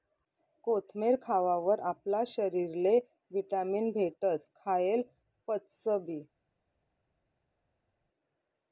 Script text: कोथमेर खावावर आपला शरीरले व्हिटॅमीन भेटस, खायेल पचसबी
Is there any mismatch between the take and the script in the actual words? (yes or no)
no